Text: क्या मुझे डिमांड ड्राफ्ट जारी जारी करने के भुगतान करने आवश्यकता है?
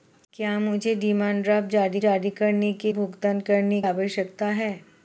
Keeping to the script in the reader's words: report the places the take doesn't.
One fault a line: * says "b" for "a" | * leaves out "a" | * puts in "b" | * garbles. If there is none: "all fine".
all fine